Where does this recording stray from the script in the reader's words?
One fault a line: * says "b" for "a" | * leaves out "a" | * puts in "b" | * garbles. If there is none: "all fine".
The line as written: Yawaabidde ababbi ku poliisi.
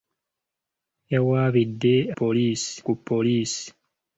* says "poliisi" for "ababbi"